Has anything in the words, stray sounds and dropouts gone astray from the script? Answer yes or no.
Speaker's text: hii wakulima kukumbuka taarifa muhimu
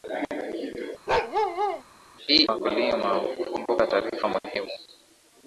yes